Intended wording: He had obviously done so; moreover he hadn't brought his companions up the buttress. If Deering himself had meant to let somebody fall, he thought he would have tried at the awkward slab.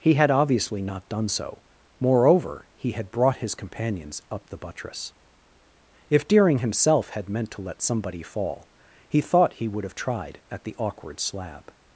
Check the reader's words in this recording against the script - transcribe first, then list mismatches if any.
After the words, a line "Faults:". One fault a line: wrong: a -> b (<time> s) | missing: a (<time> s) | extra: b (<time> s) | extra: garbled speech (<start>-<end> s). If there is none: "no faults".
He had obviously not done so; moreover he had brought his companions up the buttress. If Deering himself had meant to let somebody fall, he thought he would have tried at the awkward slab.
Faults:
extra: not (0.8 s)
wrong: hadn't -> had (2.9 s)